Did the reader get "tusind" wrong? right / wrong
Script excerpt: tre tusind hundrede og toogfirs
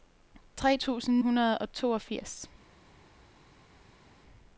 right